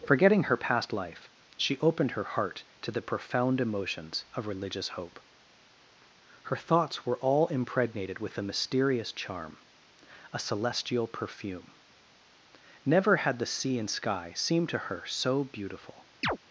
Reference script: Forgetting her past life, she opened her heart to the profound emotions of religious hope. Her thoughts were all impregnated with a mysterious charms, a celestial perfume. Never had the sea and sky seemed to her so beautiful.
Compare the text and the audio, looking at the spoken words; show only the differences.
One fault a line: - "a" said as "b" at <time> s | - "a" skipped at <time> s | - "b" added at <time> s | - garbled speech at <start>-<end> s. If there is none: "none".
- "charms" said as "charm" at 9.1 s